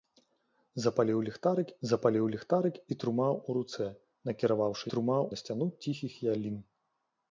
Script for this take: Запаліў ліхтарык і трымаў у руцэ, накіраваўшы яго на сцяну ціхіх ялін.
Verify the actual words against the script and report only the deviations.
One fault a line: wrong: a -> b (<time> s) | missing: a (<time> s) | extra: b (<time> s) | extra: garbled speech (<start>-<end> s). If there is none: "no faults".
extra: запаліў ліхтарык (1.9 s)
wrong: яго -> трымаў (4.9 s)